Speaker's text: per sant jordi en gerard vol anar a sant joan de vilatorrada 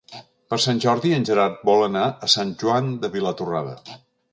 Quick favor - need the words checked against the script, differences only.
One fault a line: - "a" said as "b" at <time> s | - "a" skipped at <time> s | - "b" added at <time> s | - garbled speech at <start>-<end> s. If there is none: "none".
none